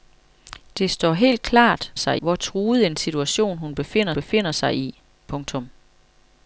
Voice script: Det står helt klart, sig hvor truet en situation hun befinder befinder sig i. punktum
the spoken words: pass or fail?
pass